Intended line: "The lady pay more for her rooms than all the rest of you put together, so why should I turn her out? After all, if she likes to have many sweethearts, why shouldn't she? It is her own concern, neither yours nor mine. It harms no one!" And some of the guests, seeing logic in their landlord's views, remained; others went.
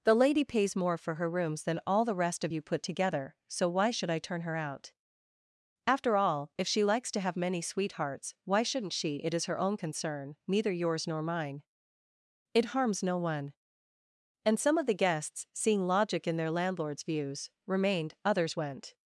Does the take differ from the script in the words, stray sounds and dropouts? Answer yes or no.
yes